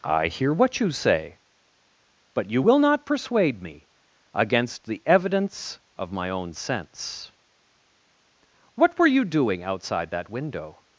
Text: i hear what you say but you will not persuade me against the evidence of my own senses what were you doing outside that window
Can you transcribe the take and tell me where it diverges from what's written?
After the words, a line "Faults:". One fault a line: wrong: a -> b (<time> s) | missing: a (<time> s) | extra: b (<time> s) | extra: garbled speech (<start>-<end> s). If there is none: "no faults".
i hear what you say but you will not persuade me against the evidence of my own sense what were you doing outside that window
Faults:
wrong: senses -> sense (6.5 s)